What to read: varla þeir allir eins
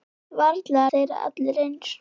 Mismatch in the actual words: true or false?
false